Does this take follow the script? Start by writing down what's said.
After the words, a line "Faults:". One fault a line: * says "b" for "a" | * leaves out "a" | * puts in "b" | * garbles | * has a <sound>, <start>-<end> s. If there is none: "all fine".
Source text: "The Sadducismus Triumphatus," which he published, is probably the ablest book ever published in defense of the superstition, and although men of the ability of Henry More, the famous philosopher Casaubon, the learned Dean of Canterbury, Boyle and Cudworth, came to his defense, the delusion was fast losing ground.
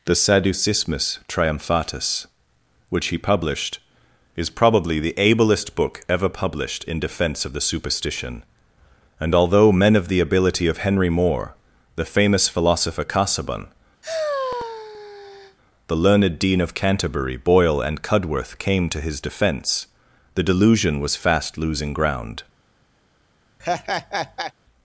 "The Sadducismus Triumphatus," which he published, is probably the ablest book ever published in defense of the superstition, and although men of the ability of Henry More, the famous philosopher Casaubon, the learned Dean of Canterbury, Boyle and Cudworth, came to his defense, the delusion was fast losing ground.
Faults:
* has a sigh, 14.0-15.6 s
* has a laugh, 23.6-24.5 s